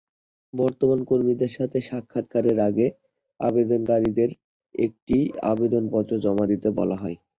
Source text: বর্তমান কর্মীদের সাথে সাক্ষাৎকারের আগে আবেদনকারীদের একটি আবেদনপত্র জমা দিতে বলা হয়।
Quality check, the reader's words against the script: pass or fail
pass